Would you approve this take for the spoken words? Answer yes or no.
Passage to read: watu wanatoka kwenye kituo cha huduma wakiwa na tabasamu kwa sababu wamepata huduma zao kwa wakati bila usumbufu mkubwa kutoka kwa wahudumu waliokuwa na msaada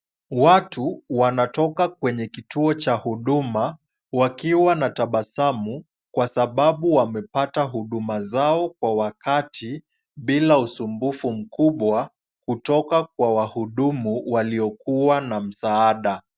yes